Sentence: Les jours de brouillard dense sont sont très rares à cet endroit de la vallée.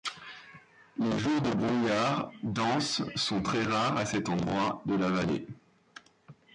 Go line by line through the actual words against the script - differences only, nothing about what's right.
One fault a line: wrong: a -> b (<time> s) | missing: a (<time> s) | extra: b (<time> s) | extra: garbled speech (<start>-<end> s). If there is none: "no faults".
missing: sont (3.4 s)